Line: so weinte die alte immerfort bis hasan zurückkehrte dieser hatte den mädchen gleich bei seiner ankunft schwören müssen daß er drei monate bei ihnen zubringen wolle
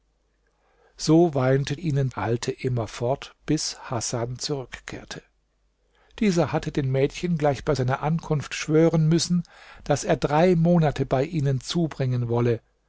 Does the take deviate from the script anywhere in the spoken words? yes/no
yes